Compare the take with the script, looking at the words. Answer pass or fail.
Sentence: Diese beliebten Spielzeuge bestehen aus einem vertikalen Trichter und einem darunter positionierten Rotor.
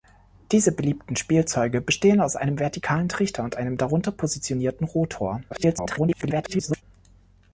fail